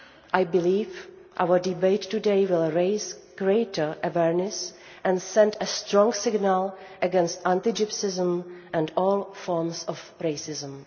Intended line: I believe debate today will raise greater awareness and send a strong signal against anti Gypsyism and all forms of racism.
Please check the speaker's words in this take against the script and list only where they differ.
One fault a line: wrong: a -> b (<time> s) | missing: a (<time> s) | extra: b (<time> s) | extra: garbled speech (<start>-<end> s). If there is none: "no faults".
extra: our (1.4 s)